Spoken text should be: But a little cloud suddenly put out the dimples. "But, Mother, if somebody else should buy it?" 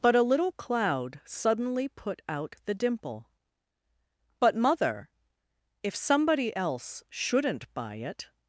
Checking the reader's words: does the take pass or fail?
fail